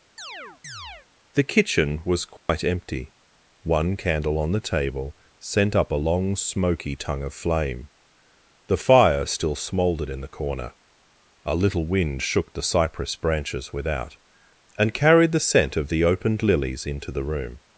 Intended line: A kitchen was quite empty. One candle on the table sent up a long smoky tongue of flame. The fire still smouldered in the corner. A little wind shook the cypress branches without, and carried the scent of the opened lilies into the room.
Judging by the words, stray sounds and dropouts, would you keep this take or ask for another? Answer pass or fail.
fail